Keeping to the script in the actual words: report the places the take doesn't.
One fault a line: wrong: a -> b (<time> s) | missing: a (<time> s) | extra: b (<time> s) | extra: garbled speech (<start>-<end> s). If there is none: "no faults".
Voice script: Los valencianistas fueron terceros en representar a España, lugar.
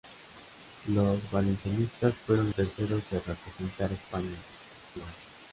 no faults